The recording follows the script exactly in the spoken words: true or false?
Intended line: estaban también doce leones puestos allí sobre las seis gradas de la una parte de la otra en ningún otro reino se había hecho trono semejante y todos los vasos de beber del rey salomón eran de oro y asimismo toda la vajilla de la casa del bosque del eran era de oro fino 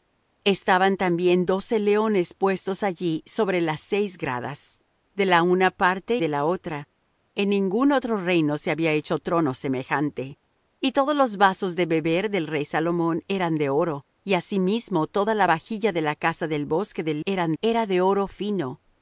true